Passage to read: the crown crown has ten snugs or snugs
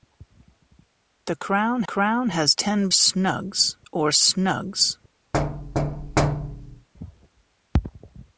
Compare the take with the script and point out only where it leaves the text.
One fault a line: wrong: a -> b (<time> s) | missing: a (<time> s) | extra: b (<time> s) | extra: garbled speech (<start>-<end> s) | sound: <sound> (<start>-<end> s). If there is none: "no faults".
sound: thud (5.3-6.9 s)